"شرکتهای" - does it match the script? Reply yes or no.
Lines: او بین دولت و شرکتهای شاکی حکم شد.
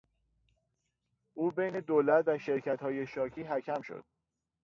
yes